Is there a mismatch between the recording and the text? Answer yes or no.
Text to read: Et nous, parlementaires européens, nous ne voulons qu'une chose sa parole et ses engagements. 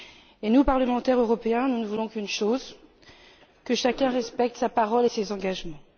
yes